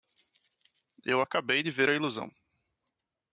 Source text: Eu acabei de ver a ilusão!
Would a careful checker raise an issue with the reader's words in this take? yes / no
no